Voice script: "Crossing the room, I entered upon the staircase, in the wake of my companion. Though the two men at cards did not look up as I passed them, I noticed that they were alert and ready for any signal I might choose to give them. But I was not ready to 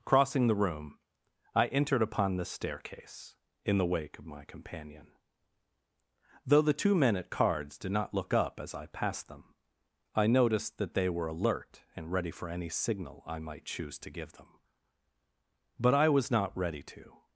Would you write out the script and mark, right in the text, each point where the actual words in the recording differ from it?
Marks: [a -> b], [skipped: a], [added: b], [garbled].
"Crossing the room, I entered upon the staircase, in the wake of my companion. Though the two men at cards did not look up as I passed them, I noticed that they were alert and ready for any signal I might choose to give them. But I was not ready to